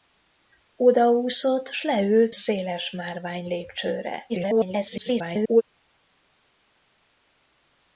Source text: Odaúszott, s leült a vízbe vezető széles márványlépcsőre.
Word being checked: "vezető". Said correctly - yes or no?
no